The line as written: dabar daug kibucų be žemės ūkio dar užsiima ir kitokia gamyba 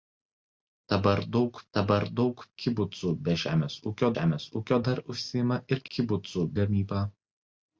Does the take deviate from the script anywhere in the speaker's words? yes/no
yes